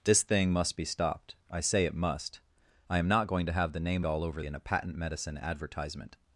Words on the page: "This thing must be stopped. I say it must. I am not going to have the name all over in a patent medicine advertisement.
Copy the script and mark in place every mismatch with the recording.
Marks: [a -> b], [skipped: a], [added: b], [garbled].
"This thing must be stopped. I say it must. I am not going to have the name all over in a patent medicine advertisement.